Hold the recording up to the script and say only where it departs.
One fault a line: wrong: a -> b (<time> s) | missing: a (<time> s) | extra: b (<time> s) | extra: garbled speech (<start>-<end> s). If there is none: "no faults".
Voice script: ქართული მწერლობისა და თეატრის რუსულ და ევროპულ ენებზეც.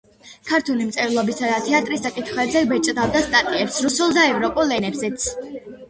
extra: საკითხებზე ბეჭდავდა სტატიებს (2.1 s)